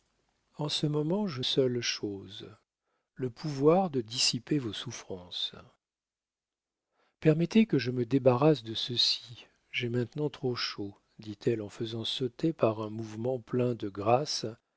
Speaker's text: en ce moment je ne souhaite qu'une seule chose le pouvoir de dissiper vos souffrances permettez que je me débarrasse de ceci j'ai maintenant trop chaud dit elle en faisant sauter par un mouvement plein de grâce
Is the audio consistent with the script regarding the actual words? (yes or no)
no